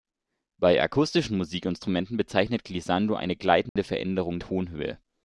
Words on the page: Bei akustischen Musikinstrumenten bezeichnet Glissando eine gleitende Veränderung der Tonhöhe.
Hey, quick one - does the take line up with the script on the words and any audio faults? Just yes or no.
no